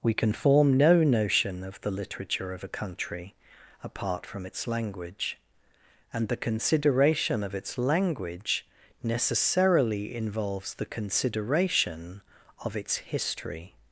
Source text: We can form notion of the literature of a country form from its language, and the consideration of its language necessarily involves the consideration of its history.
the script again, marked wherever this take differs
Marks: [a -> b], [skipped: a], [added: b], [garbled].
We can form [added: no] notion of the literature of a country [form -> apart] from its language, and the consideration of its language necessarily involves the consideration of its history.